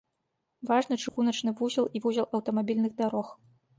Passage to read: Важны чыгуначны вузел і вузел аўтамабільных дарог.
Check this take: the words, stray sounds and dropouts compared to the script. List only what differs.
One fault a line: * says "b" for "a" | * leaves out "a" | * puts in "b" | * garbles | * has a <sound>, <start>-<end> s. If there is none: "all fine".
* has a dropout, 1.1-1.2 s